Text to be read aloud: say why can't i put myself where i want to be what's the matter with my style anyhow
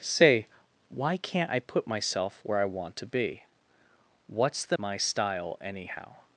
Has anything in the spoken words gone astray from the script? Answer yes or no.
yes